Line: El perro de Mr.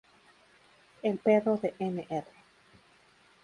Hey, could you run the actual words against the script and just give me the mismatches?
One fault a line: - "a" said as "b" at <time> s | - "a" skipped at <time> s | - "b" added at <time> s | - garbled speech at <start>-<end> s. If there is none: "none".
none